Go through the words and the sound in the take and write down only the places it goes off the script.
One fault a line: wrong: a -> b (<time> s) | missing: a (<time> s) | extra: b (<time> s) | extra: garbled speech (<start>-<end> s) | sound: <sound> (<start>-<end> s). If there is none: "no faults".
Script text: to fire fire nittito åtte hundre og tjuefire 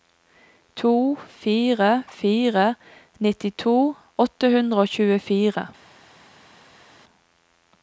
no faults